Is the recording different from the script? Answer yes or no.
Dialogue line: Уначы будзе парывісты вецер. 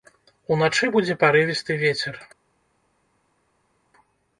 no